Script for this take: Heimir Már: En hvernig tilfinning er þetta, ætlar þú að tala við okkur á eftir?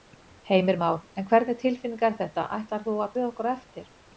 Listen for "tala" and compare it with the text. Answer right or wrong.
wrong